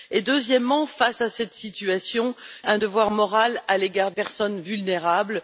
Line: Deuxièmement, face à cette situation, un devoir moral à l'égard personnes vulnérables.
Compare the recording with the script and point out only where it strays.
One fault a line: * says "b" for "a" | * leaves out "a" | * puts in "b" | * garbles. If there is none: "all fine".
all fine